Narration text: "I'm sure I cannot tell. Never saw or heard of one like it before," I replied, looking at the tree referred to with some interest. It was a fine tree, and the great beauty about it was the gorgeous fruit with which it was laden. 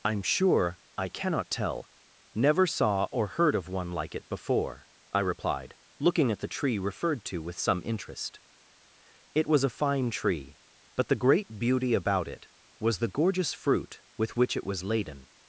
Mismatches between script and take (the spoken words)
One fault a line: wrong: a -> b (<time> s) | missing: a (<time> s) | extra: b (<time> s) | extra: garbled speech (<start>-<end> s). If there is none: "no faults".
wrong: and -> but (11.0 s)